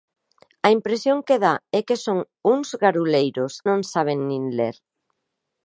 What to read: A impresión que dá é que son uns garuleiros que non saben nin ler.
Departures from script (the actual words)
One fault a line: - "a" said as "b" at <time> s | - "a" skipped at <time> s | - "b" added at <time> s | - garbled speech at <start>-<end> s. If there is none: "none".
- "que" skipped at 3.5 s